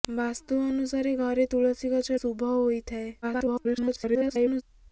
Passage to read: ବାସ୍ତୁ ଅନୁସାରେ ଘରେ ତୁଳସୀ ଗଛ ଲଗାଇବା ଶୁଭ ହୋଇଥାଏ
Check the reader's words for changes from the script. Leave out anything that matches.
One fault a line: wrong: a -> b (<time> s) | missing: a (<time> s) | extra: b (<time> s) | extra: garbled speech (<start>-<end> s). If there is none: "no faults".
missing: ଲଗାଇବା (2.2 s)
extra: garbled speech (3.2-4.6 s)